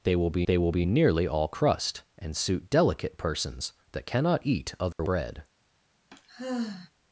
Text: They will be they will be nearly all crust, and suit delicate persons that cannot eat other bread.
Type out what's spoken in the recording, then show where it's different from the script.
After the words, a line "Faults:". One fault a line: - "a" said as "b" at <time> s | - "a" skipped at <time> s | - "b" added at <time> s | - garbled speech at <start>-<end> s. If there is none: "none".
They will be they will be nearly all crust, and suit delicate persons that cannot eat other bread.
Faults:
none